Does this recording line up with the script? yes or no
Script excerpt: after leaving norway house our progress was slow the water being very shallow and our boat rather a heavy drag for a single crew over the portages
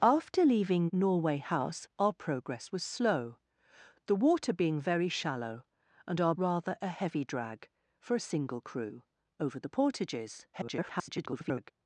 no